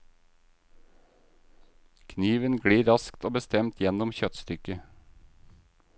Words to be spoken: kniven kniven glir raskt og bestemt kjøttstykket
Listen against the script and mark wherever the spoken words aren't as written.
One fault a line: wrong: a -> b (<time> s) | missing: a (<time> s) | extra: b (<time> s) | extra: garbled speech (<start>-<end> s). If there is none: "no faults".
missing: kniven (2.6 s)
extra: gjennom (3.8 s)